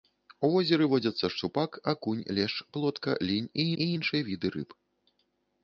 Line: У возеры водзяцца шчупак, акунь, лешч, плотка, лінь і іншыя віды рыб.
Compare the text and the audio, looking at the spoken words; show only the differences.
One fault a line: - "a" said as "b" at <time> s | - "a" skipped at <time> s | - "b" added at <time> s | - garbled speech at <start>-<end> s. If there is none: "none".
- "і" added at 3.7 s